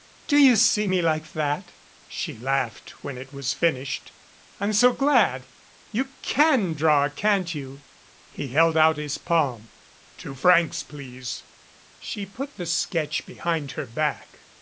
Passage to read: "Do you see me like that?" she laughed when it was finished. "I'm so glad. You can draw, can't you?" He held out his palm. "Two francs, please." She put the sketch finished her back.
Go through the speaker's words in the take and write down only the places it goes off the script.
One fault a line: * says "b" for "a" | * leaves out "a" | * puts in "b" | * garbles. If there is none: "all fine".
* says "behind" for "finished"